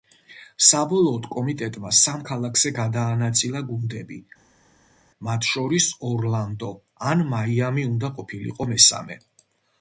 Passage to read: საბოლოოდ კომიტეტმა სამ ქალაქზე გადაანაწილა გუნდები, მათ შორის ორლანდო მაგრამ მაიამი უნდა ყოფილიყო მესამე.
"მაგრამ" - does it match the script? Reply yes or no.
no